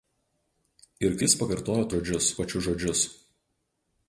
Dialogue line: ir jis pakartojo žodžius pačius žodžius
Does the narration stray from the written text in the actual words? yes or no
no